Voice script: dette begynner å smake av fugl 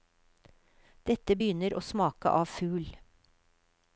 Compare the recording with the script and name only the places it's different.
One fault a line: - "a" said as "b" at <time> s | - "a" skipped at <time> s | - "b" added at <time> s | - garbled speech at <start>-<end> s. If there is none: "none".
none